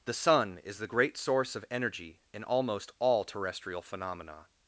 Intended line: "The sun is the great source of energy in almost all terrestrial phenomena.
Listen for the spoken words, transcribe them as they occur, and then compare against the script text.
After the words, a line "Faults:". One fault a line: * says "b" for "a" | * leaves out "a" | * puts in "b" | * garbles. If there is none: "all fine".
"The sun is the great source of energy in almost all terrestrial phenomena.
Faults:
all fine